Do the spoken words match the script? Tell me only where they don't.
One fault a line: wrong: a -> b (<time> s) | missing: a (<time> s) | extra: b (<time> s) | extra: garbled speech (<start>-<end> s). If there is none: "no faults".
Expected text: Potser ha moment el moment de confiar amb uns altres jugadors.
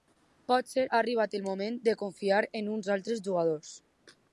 wrong: moment -> arribat (1.0 s)
wrong: amb -> en (2.6 s)